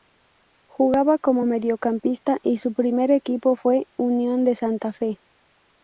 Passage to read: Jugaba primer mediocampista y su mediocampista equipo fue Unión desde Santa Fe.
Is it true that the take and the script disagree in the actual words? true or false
true